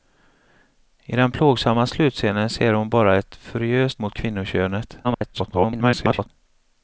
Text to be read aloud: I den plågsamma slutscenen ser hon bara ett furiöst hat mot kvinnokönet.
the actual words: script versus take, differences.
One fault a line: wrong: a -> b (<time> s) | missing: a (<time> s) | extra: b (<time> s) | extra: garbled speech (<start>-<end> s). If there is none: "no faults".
missing: hat (4.0 s)
extra: garbled speech (5.0-6.3 s)